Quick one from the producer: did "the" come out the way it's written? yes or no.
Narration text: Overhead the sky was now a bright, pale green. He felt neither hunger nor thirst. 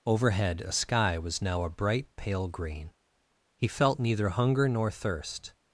no